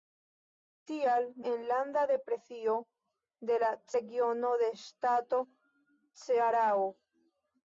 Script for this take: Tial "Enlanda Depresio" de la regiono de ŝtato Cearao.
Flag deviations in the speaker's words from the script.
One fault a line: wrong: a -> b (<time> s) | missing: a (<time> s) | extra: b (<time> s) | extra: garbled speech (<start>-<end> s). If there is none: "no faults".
no faults